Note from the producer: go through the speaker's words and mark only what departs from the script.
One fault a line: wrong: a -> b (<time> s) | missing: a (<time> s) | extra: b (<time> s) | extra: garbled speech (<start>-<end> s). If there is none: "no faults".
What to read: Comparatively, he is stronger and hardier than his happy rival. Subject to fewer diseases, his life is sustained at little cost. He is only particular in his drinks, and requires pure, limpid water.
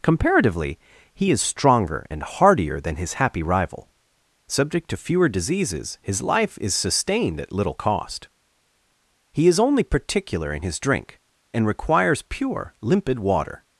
wrong: drinks -> drink (10.8 s)